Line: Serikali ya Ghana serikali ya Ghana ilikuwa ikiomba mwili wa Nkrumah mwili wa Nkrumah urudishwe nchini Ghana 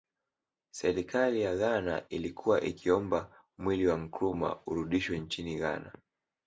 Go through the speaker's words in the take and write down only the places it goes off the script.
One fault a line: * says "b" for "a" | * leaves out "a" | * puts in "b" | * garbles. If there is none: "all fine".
* leaves out "serikali ya Ghana"
* leaves out "mwili wa Nkrumah"